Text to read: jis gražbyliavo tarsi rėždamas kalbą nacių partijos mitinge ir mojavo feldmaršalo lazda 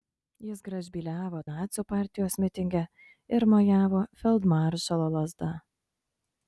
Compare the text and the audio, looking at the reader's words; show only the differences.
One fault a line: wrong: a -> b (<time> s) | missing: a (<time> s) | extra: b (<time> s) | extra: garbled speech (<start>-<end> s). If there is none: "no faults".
missing: tarsi rėždamas kalbą (1.4 s)